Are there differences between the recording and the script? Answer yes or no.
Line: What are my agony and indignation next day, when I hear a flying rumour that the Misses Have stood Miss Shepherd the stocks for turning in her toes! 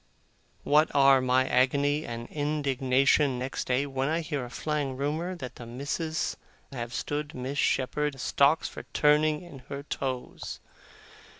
no